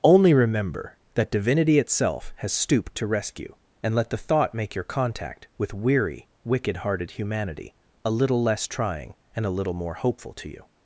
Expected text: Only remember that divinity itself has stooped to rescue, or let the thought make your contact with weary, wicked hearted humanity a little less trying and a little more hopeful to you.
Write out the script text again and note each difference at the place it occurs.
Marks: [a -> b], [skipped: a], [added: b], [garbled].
Only remember that divinity itself has stooped to rescue, [or -> and] let the thought make your contact with weary, wicked hearted humanity a little less trying and a little more hopeful to you.